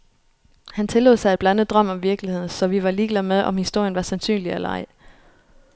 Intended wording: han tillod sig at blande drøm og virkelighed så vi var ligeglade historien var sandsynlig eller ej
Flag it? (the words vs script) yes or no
yes